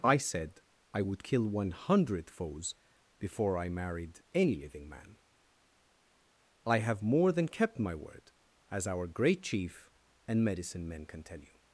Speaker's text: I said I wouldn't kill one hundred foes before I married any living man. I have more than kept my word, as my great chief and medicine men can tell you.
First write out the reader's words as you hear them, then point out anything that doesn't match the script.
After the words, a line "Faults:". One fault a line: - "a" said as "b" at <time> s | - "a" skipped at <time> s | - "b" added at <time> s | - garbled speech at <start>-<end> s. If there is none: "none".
I said I would kill one hundred foes before I married any living man. I have more than kept my word, as our great chief and medicine men can tell you.
Faults:
- "wouldn't" said as "would" at 1.0 s
- "my" said as "our" at 8.9 s